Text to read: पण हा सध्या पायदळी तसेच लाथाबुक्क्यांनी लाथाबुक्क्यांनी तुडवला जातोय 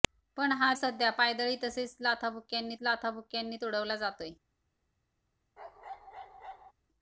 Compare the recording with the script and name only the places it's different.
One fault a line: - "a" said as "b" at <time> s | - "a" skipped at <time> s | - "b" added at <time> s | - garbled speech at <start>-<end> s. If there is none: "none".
none